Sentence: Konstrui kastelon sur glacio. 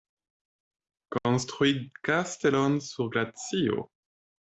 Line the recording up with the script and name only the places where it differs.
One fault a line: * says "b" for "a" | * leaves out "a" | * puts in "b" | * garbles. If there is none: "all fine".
all fine